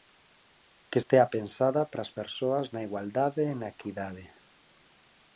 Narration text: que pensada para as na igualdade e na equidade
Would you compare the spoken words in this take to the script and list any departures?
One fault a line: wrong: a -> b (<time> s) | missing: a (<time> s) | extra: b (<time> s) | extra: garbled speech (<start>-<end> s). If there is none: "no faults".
extra: estea (1.0 s)
extra: persoas (2.2 s)